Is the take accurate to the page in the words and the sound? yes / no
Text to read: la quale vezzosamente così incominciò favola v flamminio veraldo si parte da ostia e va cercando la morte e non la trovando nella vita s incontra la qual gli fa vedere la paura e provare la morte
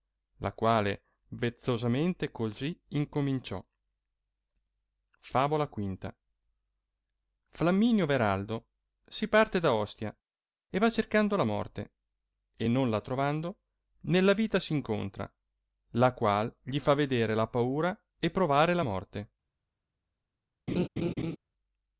no